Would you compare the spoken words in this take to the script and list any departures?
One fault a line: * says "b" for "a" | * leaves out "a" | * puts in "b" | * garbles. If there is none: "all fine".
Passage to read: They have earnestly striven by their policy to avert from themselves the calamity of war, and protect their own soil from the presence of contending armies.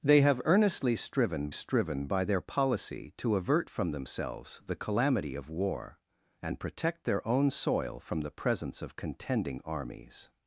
* puts in "striven"